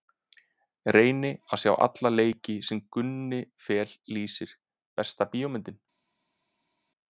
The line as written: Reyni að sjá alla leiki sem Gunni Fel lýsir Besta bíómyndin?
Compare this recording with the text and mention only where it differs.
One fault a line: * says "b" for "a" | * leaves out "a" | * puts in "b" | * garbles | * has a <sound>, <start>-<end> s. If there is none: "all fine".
all fine